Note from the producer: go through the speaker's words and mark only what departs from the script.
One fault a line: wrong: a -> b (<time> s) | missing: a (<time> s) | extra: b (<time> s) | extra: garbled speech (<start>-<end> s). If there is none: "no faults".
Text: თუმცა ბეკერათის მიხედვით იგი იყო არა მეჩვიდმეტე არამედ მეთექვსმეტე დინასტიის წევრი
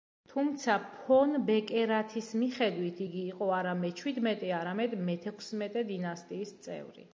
extra: ფონ (0.9 s)